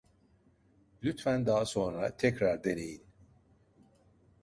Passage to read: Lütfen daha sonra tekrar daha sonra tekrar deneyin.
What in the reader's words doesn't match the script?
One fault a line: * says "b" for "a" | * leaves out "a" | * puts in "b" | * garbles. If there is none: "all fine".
* leaves out "daha sonra tekrar"